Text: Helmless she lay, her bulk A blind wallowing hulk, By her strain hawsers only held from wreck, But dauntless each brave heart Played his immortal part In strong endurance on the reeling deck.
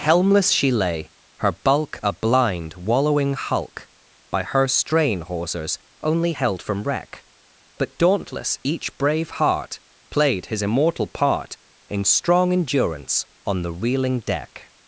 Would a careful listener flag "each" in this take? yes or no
no